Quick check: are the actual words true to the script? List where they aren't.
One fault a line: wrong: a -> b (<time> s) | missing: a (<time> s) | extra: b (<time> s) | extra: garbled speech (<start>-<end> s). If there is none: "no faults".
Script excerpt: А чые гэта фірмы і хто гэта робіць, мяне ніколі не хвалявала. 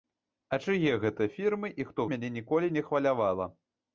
missing: гэта робіць (2.0 s)